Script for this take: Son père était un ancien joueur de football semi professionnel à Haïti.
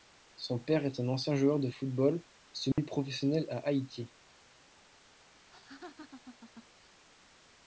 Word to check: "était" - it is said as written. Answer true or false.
false